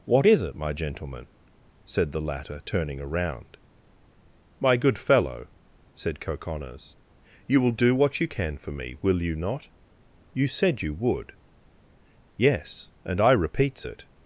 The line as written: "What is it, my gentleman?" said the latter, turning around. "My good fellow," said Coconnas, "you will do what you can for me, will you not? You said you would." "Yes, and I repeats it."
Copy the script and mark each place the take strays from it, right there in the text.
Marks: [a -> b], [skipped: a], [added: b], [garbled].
"What is it, my gentleman?" said the latter, turning around. "My good fellow," said Coconnas, "you will do what you can for me, will you not? You said you would." "Yes, and I repeats it."